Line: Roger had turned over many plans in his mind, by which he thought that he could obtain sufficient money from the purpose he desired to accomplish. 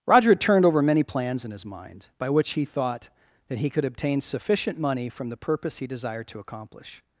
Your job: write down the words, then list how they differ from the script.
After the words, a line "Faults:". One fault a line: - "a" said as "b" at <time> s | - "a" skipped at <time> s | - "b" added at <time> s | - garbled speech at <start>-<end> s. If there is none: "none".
Roger had turned over many plans in his mind, by which he thought that he could obtain sufficient money from the purpose he desired to accomplish.
Faults:
none